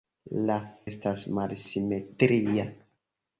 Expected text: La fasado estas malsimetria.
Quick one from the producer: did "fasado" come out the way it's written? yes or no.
no